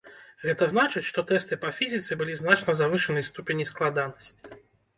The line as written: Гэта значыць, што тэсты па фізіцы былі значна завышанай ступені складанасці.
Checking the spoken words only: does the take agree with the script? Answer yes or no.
yes